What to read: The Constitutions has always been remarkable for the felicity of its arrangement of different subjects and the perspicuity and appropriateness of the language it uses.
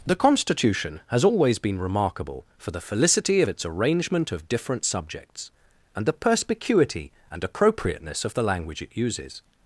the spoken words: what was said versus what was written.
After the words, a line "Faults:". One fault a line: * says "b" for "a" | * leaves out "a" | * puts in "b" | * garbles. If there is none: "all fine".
The Constitution has always been remarkable for the felicity of its arrangement of different subjects and the perspicuity and appropriateness of the language it uses.
Faults:
* says "Constitution" for "Constitutions"